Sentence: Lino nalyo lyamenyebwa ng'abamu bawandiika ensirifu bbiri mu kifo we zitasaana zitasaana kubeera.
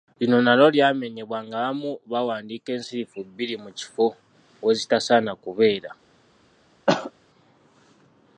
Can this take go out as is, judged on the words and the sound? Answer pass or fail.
fail